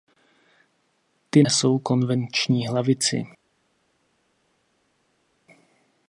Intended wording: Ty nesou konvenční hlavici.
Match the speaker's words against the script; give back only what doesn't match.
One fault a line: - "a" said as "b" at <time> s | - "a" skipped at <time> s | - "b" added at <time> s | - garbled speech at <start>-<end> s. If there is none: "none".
none